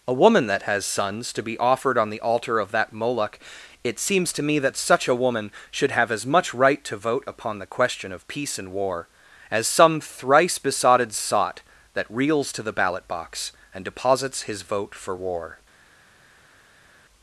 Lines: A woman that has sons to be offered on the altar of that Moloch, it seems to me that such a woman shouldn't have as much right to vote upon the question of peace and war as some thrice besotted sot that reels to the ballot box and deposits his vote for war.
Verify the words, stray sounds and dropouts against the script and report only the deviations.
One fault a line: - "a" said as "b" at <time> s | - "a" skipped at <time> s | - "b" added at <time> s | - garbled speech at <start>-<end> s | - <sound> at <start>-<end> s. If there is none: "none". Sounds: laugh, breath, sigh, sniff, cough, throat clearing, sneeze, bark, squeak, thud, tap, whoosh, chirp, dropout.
- "shouldn't" said as "should" at 5.7 s